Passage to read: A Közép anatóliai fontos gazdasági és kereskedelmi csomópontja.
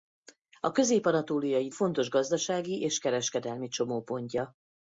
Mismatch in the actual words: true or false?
false